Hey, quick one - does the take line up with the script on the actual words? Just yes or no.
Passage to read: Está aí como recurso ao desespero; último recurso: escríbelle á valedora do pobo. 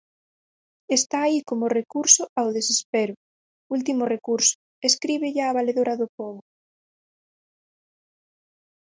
yes